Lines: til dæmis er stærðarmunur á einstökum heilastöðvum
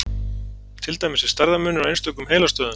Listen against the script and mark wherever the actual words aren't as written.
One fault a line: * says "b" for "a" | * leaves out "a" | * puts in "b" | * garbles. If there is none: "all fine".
all fine